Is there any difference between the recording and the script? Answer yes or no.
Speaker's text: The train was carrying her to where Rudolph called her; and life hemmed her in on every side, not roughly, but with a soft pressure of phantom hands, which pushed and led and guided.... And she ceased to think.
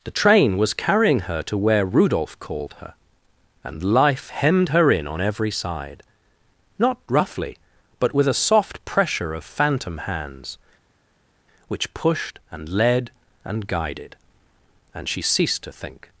no